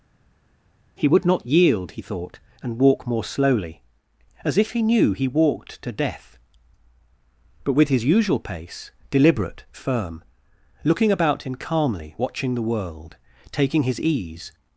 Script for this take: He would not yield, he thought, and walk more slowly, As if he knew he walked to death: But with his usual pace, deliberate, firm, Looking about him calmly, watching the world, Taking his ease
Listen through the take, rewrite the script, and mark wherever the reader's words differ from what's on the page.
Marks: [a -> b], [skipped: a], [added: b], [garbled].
He would not yield, he thought, and walk more slowly, As if he knew he walked to death: But with his usual pace, deliberate, firm, Looking about him calmly, watching the world, Taking his ease